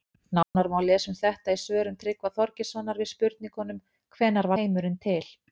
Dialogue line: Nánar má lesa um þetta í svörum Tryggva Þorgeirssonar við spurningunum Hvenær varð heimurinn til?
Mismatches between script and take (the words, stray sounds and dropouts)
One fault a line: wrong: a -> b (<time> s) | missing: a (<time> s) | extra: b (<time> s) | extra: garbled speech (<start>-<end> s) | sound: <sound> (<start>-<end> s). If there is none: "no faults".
sound: dropout (0.4-0.6 s)
missing: varð (4.5 s)